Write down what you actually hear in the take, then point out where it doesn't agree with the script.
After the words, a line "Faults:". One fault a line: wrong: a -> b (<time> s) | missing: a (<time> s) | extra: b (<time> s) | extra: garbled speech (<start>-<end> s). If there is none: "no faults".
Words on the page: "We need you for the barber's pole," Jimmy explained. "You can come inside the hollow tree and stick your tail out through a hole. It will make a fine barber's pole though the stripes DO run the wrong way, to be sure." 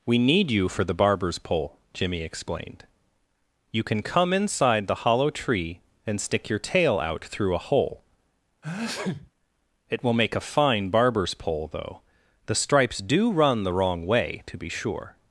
"We need you for the barber's pole," Jimmy explained. "You can come inside the hollow tree and stick your tail out through a hole. It will make a fine barber's pole though the stripes DO run the wrong way, to be sure."
Faults:
no faults